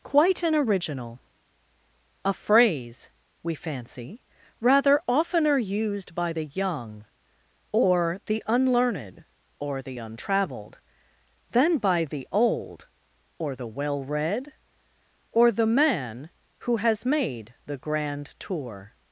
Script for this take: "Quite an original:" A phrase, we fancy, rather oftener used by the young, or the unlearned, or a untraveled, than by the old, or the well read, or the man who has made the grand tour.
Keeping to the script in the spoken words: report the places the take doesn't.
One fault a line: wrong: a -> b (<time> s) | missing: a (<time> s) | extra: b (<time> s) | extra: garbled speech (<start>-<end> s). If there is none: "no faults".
wrong: a -> the (9.8 s)